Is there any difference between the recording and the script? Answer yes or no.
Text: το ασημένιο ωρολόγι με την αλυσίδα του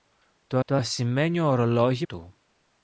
yes